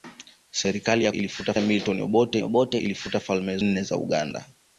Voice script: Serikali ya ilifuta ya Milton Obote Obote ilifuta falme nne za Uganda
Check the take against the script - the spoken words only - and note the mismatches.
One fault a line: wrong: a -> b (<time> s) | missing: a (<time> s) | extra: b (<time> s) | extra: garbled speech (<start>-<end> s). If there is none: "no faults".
no faults